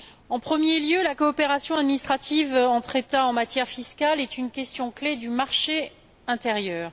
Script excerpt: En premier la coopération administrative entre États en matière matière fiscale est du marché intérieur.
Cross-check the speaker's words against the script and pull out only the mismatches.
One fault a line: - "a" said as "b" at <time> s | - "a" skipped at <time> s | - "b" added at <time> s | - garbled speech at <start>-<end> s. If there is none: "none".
- "lieu" added at 0.8 s
- "matière" skipped at 3.7 s
- "une question clé" added at 4.4 s